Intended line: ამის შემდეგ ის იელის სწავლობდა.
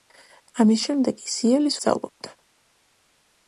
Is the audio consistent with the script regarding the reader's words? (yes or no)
yes